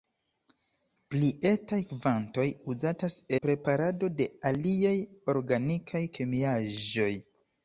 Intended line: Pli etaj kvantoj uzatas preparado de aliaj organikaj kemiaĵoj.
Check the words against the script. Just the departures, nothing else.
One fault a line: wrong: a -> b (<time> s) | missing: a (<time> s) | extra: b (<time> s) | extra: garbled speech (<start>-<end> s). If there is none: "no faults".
no faults